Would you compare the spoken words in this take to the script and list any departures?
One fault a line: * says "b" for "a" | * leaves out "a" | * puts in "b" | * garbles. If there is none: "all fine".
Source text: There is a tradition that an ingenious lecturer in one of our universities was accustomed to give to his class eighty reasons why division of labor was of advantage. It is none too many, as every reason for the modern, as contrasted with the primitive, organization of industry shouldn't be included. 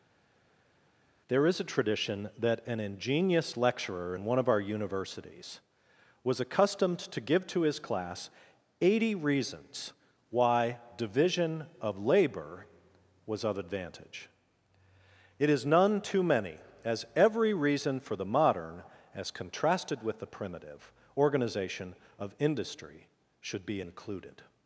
* says "should" for "shouldn't"